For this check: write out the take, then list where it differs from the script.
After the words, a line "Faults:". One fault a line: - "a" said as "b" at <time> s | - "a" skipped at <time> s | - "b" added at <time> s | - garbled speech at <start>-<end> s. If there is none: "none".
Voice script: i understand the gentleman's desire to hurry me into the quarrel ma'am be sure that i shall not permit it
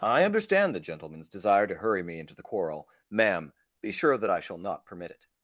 i understand the gentleman's desire to hurry me into the quarrel ma'am be sure that i shall not permit it
Faults:
none